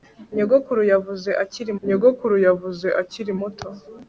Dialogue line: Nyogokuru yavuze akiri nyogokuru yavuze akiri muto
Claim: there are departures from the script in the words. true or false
false